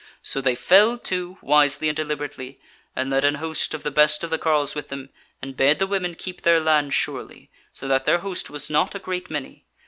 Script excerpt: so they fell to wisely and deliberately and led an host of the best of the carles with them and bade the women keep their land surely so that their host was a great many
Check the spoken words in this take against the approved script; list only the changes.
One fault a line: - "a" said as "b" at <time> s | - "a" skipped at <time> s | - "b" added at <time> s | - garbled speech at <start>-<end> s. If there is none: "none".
- "not" added at 8.7 s